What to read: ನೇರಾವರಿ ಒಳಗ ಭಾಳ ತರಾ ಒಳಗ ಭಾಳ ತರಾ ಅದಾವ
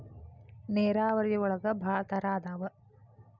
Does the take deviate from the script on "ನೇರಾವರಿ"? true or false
false